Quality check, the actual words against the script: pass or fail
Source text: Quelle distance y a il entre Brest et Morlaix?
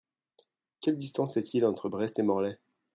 fail